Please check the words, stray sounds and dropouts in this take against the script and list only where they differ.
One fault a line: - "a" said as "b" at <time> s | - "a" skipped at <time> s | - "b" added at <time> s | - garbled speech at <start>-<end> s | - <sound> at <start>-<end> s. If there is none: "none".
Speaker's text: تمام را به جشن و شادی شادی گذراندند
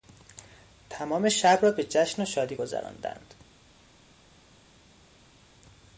- "شب" added at 1.3 s
- "شادی" skipped at 2.5 s